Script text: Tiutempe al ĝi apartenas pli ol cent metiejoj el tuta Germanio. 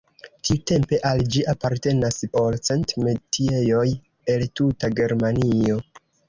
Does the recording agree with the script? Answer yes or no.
no